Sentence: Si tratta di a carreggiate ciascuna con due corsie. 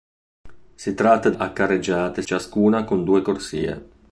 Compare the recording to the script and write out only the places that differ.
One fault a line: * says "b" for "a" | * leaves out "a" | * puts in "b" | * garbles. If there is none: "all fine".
all fine